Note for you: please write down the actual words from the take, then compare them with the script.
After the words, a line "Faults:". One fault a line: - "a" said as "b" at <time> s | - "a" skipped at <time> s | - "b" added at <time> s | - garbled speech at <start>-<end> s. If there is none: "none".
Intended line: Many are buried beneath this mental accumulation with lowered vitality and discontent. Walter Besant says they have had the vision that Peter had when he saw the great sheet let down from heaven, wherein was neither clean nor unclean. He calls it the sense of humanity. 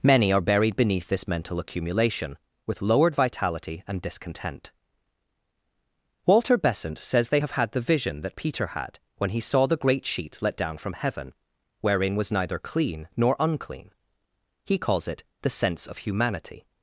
Many are buried beneath this mental accumulation with lowered vitality and discontent. Walter Besant says they have had the vision that Peter had when he saw the great sheet let down from heaven, wherein was neither clean nor unclean. He calls it the sense of humanity.
Faults:
none